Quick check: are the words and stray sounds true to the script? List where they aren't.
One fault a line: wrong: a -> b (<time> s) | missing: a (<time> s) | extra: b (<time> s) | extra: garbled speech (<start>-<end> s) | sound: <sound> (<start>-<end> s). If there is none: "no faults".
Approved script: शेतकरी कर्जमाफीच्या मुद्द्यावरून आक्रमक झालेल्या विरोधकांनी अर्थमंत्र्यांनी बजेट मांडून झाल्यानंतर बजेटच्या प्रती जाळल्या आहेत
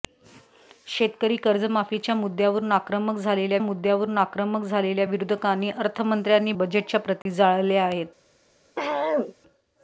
wrong: विरोधकांनी अर्थमंत्र्यांनी बजेट मांडून झाल्यानंतर -> मुद्द्यावरून आक्रमक झालेल्या विरोधकांनी अर्थमंत्र्यांनी (3.6 s)
sound: dropout (7.2-7.3 s)
sound: throat clearing (8.8-9.4 s)